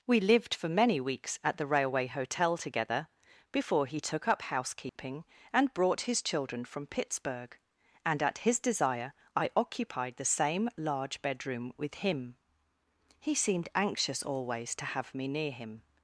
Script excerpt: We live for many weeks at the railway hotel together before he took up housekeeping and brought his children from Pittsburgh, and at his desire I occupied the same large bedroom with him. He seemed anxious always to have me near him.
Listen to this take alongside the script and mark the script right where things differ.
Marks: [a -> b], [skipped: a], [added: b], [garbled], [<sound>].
We [live -> lived] for many weeks at the railway hotel together before he took up housekeeping [dropout] and brought his children from Pittsburgh, and at his desire I occupied the same large bedroom with him. He seemed anxious always to have me near him.